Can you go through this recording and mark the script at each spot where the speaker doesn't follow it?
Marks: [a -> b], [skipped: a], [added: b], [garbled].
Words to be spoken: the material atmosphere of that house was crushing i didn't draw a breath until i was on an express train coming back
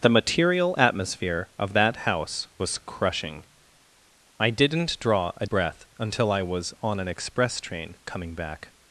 the material atmosphere of that house was crushing i didn't draw a breath until i was on an express train coming back